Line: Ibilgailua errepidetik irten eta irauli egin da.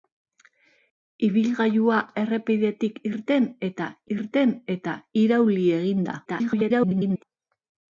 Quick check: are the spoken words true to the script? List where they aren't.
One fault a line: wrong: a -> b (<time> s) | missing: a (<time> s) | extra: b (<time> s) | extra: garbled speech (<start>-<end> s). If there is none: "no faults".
extra: irten eta (4.2 s)
extra: garbled speech (6.3-7.2 s)